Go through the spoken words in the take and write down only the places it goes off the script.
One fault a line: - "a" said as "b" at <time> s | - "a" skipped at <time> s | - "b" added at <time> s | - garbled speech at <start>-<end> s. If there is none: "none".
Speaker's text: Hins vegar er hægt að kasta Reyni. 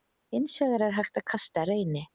none